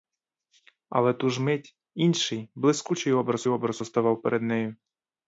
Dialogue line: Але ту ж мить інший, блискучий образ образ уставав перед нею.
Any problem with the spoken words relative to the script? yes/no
no